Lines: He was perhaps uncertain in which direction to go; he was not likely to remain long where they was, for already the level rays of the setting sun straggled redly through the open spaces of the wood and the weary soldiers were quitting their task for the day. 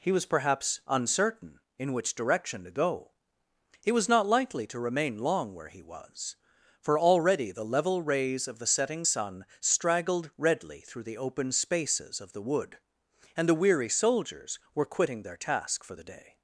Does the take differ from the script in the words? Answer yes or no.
yes